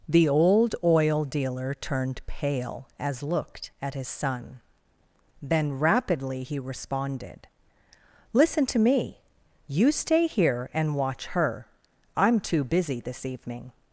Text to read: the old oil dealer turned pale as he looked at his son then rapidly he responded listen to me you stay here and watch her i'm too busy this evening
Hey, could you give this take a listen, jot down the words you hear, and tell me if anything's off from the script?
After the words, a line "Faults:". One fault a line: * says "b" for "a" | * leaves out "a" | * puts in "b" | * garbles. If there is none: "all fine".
the old oil dealer turned pale as looked at his son then rapidly he responded listen to me you stay here and watch her i'm too busy this evening
Faults:
* leaves out "he"